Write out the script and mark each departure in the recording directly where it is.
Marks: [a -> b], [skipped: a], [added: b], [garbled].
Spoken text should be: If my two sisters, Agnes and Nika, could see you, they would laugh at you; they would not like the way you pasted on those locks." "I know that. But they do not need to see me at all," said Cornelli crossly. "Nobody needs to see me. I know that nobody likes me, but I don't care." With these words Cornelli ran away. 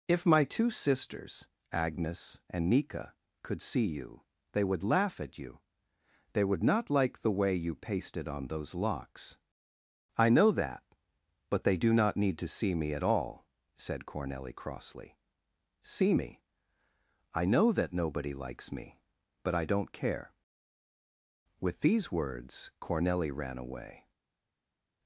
If my two sisters, Agnes and Nika, could see you, they would laugh at you; they would not like the way you pasted on those locks." "I know that. But they do not need to see me at all," said Cornelli crossly. [skipped: "Nobody needs to] see me. I know that nobody likes me, but I don't care." With these words Cornelli ran away.